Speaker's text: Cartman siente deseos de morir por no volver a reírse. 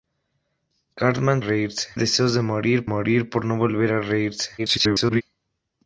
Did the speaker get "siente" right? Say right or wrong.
wrong